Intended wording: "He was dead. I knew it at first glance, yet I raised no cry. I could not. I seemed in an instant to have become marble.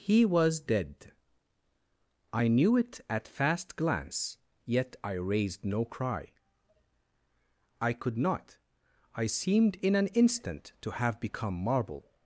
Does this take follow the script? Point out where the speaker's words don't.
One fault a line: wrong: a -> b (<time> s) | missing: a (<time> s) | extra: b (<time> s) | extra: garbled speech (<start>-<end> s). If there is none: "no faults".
wrong: first -> fast (3.3 s)